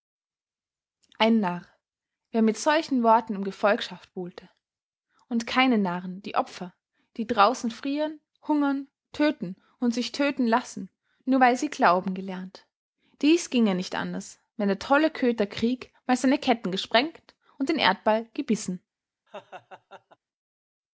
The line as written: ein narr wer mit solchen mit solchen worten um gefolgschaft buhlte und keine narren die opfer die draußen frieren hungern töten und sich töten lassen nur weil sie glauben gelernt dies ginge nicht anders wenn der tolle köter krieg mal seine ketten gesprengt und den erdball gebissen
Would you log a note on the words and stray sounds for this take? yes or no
yes